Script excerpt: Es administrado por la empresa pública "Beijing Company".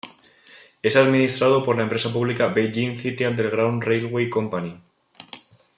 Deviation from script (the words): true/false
true